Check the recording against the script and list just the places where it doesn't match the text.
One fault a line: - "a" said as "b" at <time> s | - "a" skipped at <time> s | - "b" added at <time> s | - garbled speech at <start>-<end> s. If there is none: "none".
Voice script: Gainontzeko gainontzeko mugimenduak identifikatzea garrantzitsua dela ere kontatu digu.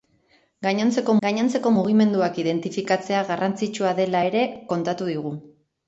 none